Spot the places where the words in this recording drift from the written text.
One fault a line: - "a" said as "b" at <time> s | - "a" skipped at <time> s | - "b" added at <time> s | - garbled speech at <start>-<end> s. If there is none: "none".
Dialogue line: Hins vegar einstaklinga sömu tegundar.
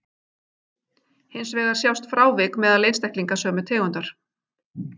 - "sjást frávik meðal" added at 1.8 s